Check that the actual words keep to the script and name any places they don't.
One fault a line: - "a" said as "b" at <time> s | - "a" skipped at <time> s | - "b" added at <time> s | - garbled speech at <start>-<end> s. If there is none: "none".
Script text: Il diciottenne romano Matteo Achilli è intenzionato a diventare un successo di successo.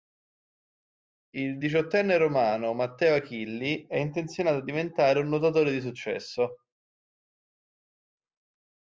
- "successo" said as "nuotatore" at 5.3 s